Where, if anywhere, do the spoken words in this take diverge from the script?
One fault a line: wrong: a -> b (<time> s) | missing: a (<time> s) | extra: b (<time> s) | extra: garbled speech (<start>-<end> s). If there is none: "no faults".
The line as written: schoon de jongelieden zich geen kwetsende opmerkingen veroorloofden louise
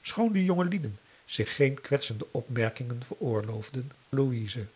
no faults